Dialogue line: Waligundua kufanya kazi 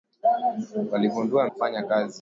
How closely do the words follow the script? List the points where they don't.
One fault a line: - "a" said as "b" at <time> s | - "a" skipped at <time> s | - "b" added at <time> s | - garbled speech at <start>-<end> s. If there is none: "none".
none